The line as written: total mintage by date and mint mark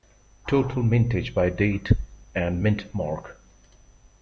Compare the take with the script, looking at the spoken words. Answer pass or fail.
pass